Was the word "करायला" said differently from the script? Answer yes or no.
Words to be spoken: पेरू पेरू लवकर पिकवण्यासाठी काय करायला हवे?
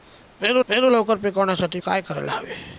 no